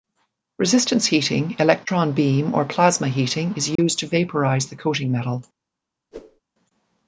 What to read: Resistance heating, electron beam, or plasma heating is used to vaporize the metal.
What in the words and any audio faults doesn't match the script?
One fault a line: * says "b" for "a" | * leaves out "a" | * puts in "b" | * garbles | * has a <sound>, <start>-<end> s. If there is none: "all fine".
* has a dropout, 3.8-3.8 s
* puts in "coating"
* has a whoosh, 6.1-6.4 s